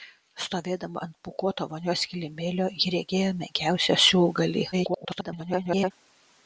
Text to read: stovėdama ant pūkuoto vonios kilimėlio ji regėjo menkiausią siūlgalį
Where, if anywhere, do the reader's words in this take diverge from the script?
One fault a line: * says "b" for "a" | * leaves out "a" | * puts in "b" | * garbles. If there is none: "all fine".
* garbles